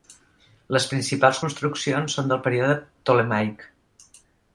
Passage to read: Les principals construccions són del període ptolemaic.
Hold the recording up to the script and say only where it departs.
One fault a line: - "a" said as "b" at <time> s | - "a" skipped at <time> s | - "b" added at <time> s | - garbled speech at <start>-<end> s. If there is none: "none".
none